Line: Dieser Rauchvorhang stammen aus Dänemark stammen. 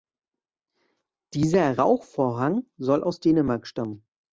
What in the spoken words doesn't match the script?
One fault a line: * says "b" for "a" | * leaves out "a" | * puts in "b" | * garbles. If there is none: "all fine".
* says "soll" for "stammen"